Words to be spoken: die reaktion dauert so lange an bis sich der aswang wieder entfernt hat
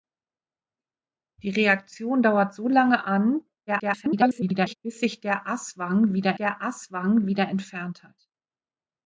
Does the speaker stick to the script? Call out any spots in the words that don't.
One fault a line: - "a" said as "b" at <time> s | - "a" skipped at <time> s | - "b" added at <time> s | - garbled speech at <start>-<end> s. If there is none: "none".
- garbled speech at 3.7-4.8 s
- "der aswang wieder" added at 6.4 s